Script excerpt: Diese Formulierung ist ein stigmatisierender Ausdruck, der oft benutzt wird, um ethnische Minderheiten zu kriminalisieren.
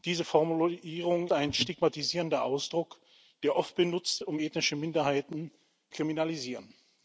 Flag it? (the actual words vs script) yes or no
yes